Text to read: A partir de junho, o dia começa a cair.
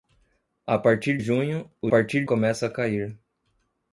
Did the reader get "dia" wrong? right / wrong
wrong